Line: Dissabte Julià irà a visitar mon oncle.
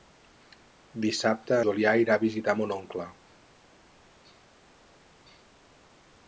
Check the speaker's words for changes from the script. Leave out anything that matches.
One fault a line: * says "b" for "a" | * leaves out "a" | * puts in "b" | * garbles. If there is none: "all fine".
all fine